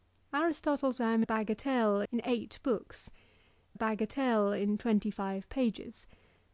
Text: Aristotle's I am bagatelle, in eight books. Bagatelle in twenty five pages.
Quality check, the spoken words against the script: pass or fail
pass